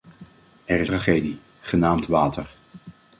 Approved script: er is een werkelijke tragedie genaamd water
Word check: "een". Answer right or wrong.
wrong